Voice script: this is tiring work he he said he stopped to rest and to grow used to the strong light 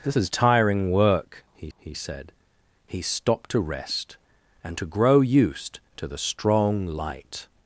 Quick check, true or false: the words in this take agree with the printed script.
true